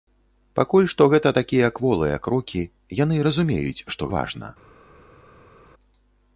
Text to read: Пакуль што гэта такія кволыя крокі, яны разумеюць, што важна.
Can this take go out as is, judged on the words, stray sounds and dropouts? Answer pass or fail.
pass